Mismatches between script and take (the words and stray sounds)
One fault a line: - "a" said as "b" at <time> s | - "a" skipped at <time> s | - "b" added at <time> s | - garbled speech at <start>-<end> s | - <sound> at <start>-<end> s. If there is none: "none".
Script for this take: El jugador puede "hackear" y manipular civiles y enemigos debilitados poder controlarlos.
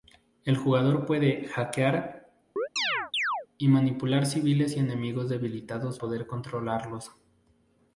- chirp at 2.6-3.5 s